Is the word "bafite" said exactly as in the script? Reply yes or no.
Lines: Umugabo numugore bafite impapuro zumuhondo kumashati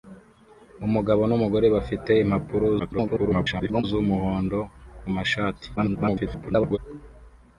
yes